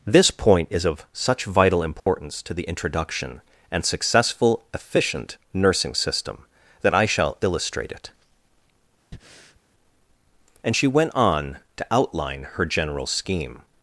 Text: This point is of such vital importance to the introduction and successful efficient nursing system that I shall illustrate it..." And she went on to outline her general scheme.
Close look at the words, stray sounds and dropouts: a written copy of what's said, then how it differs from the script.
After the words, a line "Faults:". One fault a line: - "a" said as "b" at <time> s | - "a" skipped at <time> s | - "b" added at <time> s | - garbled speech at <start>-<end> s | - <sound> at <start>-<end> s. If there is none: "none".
This point is of such vital importance to the introduction and successful efficient nursing system that I shall illustrate it..." And she went on to outline her general scheme.
Faults:
- dropout at 2.0-2.1 s
- breath at 9.1-9.6 s